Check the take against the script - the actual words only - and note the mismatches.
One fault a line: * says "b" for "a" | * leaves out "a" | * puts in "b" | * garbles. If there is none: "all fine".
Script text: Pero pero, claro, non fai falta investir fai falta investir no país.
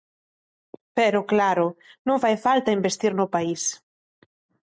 * leaves out "pero"
* leaves out "fai falta investir"